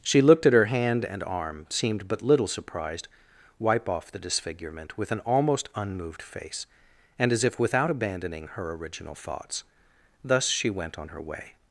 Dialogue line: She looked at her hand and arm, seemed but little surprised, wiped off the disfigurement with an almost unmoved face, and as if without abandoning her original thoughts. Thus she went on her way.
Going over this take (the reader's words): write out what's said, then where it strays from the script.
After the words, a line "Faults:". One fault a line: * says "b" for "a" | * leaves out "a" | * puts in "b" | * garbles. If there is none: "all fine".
She looked at her hand and arm, seemed but little surprised, wipe off the disfigurement with an almost unmoved face, and as if without abandoning her original thoughts. Thus she went on her way.
Faults:
* says "wipe" for "wiped"